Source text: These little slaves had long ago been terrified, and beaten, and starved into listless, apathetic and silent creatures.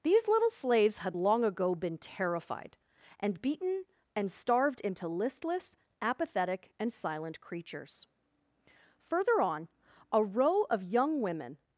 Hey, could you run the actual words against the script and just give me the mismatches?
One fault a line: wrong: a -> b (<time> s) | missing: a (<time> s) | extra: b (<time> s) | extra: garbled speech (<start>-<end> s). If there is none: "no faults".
extra: Further on a row of young women (9.0 s)